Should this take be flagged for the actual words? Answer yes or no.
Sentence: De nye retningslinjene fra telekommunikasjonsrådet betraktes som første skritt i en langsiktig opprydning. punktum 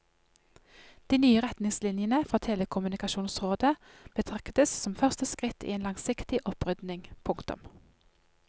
no